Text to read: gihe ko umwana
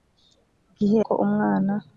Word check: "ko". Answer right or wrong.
right